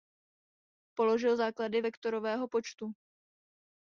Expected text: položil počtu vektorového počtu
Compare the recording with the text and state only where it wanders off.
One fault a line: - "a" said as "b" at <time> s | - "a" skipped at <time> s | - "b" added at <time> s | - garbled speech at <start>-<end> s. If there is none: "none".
- "počtu" said as "základy" at 1.4 s